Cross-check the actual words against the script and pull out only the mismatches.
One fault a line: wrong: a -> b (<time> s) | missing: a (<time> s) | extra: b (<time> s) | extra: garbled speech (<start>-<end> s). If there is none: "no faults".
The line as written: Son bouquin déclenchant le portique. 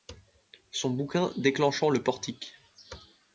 no faults